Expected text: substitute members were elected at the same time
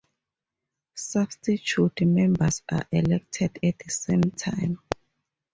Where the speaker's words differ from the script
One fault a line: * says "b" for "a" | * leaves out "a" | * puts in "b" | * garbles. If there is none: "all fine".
* says "are" for "were"